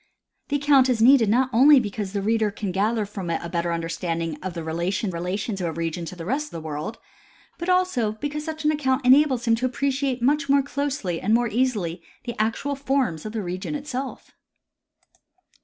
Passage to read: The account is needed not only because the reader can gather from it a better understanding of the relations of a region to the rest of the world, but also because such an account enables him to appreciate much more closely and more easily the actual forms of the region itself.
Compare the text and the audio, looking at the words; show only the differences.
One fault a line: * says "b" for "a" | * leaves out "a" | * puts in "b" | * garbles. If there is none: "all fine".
* puts in "relations"
* leaves out "of"